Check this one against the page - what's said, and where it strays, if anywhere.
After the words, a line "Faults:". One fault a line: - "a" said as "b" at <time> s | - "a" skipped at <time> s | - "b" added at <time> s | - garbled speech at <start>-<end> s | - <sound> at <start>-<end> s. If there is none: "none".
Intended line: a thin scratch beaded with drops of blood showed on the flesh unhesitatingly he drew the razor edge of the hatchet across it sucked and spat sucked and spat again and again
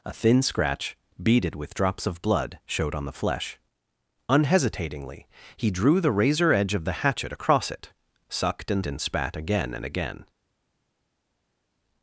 a thin scratch beaded with drops of blood showed on the flesh unhesitatingly he drew the razor edge of the hatchet across it sucked and and spat again and again
Faults:
- "spat sucked" skipped at 8.8 s